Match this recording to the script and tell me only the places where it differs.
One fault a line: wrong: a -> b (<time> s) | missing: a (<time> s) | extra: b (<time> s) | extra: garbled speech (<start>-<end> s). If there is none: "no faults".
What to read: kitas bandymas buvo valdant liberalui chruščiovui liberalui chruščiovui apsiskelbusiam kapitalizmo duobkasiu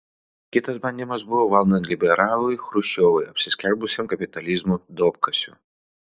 missing: liberalui chruščiovui (3.3 s)